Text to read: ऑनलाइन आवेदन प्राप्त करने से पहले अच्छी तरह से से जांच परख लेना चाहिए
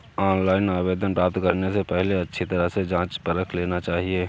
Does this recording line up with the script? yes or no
no